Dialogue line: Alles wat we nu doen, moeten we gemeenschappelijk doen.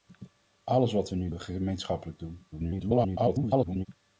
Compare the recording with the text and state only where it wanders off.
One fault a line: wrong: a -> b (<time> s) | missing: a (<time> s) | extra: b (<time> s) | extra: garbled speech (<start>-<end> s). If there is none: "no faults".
missing: doen moeten (1.3 s)
extra: garbled speech (2.5-3.9 s)